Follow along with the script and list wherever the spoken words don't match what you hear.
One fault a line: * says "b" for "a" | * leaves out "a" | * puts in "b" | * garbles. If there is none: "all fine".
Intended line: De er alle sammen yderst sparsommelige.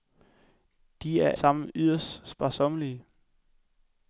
* leaves out "alle"